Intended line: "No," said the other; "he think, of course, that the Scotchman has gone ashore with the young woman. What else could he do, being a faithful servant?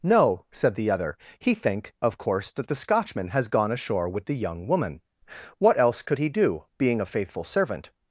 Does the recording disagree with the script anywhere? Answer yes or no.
no